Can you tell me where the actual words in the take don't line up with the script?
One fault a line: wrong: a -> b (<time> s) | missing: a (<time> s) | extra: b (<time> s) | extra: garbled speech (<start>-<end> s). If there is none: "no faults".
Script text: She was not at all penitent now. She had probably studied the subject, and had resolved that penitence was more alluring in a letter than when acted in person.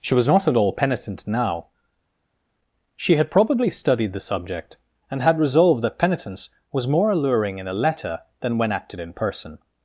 no faults